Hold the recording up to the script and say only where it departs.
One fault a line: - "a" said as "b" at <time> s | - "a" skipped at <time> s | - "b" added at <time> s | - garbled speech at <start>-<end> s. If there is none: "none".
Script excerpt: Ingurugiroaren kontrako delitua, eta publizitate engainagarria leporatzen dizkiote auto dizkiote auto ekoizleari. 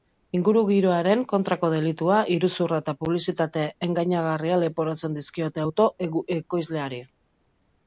- "iruzurra" added at 2.4 s
- "dizkiote auto" skipped at 5.9 s